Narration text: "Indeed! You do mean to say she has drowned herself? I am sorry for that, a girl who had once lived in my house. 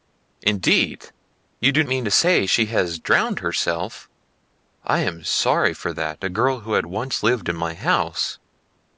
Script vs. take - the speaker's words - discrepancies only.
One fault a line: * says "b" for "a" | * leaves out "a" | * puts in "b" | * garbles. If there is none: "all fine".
all fine